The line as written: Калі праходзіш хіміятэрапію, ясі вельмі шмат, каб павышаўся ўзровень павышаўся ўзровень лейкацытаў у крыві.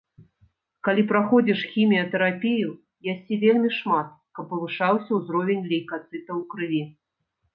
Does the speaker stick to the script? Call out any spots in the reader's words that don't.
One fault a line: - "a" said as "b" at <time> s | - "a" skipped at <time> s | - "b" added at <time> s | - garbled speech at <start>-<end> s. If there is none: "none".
- "павышаўся ўзровень" skipped at 5.7 s